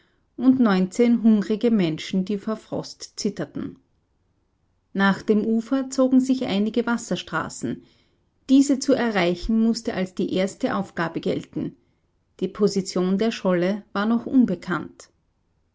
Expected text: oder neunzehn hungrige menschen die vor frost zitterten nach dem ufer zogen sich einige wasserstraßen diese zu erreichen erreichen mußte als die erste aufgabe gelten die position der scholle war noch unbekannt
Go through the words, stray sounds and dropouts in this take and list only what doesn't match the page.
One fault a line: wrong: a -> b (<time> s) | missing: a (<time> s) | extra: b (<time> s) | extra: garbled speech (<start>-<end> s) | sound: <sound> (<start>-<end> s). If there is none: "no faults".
wrong: oder -> und (0.3 s)
missing: erreichen (9.6 s)